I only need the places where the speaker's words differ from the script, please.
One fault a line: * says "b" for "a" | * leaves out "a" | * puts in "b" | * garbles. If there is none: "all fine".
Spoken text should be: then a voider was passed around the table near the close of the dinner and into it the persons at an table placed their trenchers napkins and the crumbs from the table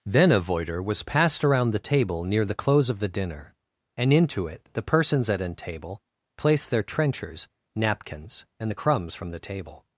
all fine